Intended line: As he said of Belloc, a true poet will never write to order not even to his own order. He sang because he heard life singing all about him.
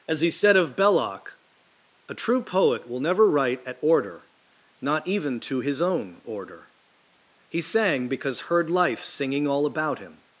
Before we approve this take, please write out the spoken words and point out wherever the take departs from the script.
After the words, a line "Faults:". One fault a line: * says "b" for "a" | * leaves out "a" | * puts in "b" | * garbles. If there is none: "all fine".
As he said of Belloc, a true poet will never write at order not even to his own order. He sang because heard life singing all about him.
Faults:
* says "at" for "to"
* leaves out "he"